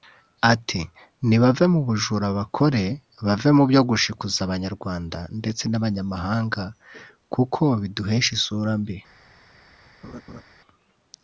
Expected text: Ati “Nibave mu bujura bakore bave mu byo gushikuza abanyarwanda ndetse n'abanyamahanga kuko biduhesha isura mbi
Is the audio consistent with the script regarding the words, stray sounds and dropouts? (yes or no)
no